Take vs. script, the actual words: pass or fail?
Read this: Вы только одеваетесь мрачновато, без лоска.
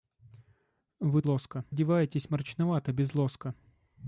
fail